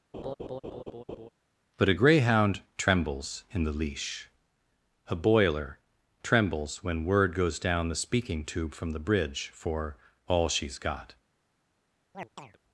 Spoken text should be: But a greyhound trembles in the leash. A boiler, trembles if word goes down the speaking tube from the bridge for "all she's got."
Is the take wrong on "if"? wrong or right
wrong